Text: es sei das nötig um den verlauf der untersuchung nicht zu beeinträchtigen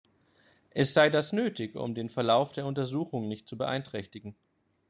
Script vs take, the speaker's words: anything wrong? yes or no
no